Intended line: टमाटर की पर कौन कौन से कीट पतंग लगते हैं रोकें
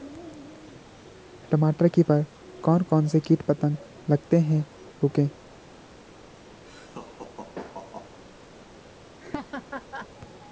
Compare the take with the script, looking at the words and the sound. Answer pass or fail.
fail